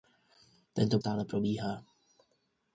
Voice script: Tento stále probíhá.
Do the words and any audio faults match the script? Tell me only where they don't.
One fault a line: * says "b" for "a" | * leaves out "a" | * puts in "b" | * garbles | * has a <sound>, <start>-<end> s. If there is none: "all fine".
all fine